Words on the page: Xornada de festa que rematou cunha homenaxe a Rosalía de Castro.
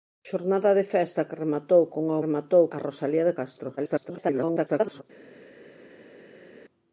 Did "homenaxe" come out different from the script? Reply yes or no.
yes